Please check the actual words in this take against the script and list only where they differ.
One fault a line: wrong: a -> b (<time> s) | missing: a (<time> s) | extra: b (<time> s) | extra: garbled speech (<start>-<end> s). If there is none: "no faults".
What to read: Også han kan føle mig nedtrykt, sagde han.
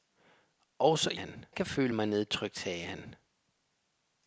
no faults